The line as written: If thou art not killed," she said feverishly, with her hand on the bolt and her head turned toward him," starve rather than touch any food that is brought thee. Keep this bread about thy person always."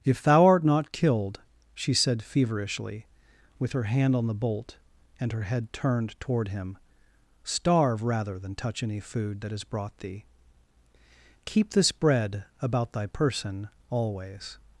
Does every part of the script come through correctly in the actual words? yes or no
yes